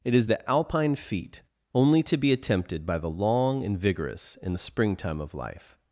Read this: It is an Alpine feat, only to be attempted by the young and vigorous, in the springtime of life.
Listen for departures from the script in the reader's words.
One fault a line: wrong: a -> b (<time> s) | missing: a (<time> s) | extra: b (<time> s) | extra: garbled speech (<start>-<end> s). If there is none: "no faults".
wrong: an -> the (0.3 s)
wrong: young -> long (3.1 s)